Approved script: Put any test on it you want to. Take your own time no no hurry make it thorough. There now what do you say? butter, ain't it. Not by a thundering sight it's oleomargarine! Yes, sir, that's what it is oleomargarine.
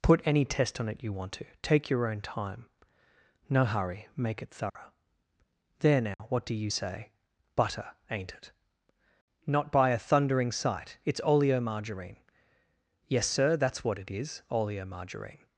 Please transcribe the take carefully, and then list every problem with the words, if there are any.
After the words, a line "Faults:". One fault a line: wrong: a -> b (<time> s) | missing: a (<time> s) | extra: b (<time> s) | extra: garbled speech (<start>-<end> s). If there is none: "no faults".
Put any test on it you want to. Take your own time no hurry make it thorough. There now what do you say? butter, ain't it. Not by a thundering sight it's oleomargarine! Yes, sir, that's what it is oleomargarine.
Faults:
missing: no (3.6 s)